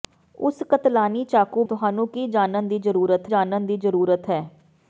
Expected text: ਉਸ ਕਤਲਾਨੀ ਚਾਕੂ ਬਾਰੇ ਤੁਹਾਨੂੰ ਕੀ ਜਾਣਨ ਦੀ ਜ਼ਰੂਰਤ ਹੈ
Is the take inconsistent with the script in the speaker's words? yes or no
yes